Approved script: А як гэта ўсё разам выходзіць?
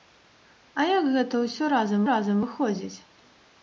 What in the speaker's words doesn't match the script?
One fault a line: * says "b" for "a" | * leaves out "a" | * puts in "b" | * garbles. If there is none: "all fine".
* puts in "разам"